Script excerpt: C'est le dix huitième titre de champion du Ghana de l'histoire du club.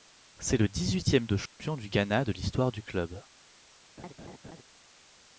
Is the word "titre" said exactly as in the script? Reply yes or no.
no